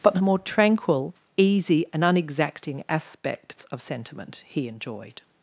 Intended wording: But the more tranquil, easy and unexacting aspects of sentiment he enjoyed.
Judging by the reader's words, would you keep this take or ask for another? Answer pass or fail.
pass